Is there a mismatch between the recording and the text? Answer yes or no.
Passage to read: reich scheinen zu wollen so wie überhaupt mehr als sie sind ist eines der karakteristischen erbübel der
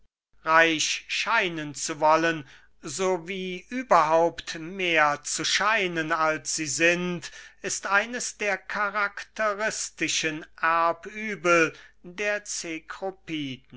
yes